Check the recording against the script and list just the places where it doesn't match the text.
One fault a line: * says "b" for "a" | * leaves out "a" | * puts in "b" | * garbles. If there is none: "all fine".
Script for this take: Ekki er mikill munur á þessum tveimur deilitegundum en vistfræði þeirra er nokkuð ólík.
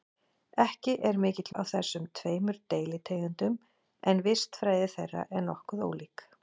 * leaves out "munur"